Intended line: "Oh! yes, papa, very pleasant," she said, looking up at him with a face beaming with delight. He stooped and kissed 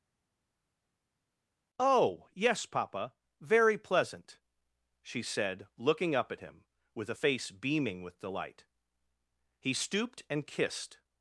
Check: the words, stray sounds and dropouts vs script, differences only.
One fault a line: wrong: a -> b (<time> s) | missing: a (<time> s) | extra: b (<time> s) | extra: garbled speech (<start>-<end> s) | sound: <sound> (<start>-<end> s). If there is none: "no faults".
no faults